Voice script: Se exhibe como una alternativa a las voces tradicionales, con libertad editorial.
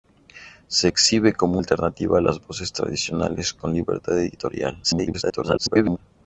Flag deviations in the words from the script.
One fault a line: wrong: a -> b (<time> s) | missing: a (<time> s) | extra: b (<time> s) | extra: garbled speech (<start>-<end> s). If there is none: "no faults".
missing: una (1.6 s)
extra: garbled speech (4.8-6.0 s)